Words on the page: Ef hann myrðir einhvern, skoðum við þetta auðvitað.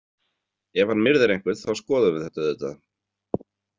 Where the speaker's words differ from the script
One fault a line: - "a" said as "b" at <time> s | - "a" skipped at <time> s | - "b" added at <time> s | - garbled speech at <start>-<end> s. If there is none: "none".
- "þá" added at 1.6 s